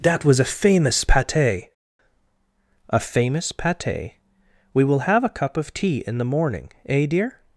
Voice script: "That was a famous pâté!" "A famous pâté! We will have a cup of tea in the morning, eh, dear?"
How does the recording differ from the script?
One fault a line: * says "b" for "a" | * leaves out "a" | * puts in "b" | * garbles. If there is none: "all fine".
all fine